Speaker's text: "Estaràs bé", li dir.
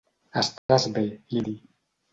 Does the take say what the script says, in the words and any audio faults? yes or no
no